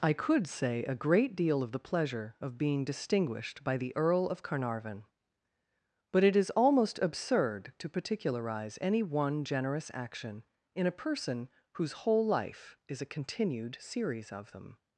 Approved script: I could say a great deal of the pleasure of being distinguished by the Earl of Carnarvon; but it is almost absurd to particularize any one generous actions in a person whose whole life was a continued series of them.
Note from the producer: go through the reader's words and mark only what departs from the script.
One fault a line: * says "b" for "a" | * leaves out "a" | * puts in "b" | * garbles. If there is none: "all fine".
* says "action" for "actions"
* says "is" for "was"